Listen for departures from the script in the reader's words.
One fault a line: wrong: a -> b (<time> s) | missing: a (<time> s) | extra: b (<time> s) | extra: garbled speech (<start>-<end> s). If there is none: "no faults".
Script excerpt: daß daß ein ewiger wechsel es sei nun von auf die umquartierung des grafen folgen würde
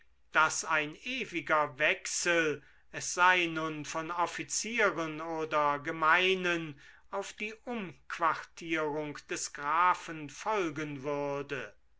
missing: daß (0.7 s)
extra: offizieren oder gemeinen (4.1 s)